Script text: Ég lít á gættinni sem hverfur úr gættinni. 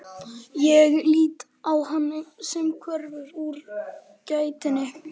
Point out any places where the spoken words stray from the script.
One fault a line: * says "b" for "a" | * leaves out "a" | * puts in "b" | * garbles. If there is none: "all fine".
* says "hann" for "gættinni"